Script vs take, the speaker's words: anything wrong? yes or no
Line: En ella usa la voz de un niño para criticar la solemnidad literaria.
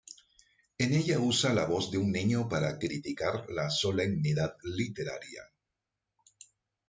no